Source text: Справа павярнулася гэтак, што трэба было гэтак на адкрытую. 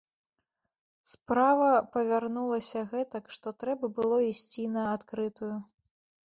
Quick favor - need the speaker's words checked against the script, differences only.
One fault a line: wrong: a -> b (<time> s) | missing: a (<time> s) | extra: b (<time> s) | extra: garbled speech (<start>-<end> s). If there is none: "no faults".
wrong: гэтак -> ісці (4.3 s)